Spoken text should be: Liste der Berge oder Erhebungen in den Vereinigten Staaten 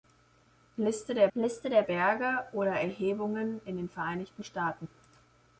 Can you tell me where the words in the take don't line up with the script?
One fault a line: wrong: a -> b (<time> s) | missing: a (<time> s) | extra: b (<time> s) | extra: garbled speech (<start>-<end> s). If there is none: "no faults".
extra: liste der (1.3 s)